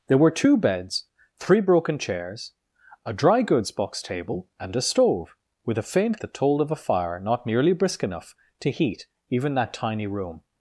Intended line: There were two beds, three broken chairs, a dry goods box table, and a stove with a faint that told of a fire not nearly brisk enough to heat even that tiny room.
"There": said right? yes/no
yes